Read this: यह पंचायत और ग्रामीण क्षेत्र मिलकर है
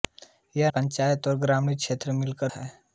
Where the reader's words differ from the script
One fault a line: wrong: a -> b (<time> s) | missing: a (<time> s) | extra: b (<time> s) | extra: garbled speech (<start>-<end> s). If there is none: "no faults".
no faults